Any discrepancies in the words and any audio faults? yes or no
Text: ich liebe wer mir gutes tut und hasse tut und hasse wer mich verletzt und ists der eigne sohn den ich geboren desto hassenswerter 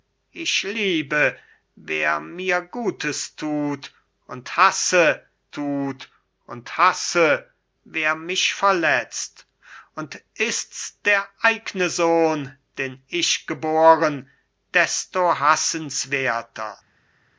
no